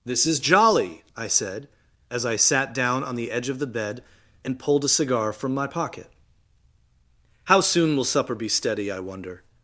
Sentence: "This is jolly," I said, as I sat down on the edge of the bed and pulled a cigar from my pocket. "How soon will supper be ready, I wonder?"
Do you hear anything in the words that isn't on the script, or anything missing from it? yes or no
yes